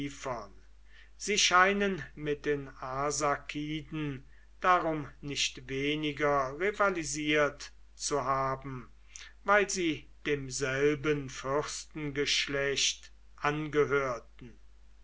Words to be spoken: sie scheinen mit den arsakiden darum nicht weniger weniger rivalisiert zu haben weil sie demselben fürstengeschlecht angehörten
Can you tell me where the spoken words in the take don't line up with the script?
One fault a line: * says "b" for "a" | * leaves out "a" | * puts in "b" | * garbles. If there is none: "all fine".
* leaves out "weniger"